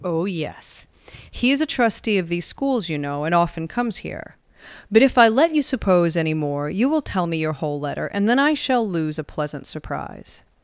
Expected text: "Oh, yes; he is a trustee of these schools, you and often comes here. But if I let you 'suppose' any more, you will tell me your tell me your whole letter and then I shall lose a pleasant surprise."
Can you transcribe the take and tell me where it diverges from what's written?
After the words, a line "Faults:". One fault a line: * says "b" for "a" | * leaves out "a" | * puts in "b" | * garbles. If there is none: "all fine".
"Oh, yes; he is a trustee of these schools, you know, and often comes here. But if I let you 'suppose' any more, you will tell me your whole letter and then I shall lose a pleasant surprise."
Faults:
* puts in "know"
* leaves out "tell me your"